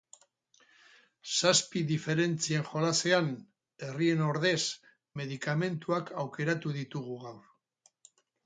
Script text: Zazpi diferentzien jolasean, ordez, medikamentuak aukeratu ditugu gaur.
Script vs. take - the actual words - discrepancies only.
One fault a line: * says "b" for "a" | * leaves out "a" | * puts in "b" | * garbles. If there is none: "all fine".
* puts in "herrien"